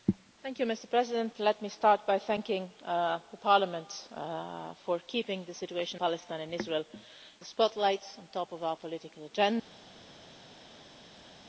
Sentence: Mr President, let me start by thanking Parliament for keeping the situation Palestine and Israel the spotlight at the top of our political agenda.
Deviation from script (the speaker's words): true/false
false